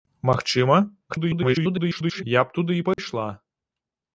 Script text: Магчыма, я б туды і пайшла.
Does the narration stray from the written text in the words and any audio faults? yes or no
yes